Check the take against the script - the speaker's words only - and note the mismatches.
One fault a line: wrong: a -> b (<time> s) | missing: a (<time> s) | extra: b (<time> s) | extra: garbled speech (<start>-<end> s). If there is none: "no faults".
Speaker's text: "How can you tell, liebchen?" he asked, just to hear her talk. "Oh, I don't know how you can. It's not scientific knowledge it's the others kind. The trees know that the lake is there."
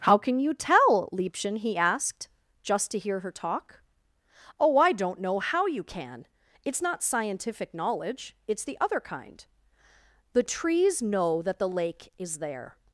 wrong: others -> other (8.8 s)